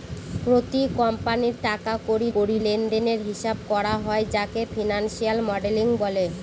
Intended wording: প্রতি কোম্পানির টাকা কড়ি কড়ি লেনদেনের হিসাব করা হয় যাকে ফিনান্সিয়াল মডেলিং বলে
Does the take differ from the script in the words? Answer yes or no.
no